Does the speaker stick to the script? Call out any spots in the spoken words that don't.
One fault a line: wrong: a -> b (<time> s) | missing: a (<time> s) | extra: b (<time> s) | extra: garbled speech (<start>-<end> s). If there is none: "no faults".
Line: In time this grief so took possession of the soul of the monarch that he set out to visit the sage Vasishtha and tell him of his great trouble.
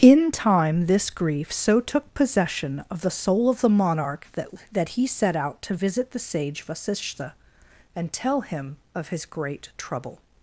extra: that (4.7 s)